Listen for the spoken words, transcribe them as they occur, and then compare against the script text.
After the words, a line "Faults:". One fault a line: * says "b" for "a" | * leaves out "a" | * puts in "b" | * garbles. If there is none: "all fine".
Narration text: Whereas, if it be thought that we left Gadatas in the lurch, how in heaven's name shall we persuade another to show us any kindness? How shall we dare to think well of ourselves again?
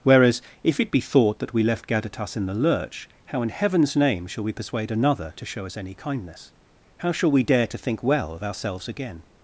Whereas, if it be thought that we left Gadatas in the lurch, how in heaven's name shall we persuade another to show us any kindness? How shall we dare to think well of ourselves again?
Faults:
all fine